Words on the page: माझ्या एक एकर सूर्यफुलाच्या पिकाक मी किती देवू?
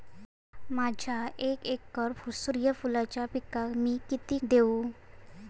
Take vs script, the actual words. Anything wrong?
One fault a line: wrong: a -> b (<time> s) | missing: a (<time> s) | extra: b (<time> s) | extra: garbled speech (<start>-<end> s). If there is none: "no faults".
no faults